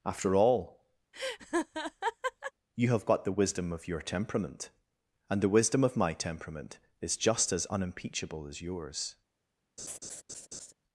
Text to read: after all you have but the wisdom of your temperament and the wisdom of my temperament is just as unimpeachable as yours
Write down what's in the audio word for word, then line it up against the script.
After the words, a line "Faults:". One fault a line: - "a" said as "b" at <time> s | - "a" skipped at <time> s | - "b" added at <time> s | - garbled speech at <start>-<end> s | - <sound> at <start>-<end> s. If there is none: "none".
after all you have got the wisdom of your temperament and the wisdom of my temperament is just as unimpeachable as yours
Faults:
- laugh at 1.1-2.5 s
- "but" said as "got" at 3.1 s
- laugh at 9.8-10.7 s